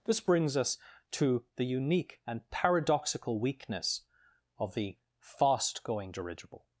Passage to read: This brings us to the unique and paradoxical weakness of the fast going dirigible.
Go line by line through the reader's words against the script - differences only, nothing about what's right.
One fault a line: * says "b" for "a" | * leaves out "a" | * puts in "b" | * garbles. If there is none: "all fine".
all fine